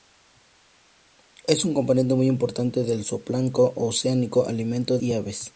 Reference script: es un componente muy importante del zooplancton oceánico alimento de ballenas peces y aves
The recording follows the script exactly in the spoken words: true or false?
false